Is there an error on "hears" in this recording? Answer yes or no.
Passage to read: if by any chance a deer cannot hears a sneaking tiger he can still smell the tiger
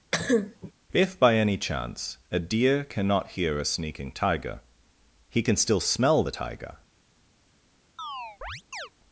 yes